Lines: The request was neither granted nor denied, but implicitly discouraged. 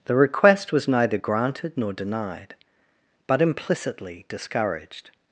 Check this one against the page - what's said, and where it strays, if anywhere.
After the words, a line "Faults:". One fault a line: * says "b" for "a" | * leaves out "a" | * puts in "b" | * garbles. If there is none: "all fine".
The request was neither granted nor denied, but implicitly discouraged.
Faults:
all fine